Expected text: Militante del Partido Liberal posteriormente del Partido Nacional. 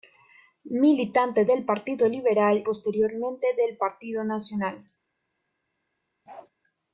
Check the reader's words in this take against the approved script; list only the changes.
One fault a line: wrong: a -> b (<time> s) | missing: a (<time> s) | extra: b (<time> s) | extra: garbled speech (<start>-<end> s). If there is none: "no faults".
no faults